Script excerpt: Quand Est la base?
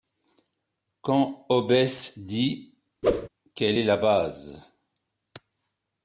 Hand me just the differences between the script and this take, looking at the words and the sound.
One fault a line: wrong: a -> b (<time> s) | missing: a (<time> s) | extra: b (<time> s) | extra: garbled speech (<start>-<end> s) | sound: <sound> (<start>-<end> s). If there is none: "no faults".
extra: Hobbes dit Quelle (1.5 s)
sound: whoosh (3.0-3.3 s)